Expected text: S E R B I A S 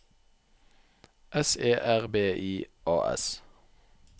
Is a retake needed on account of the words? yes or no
no